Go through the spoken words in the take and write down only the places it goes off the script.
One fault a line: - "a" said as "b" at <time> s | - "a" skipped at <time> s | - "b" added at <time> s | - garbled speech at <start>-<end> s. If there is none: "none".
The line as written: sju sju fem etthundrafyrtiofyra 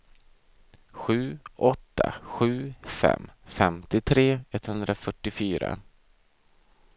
- "åtta" added at 1.6 s
- "femtiotre" added at 3.5 s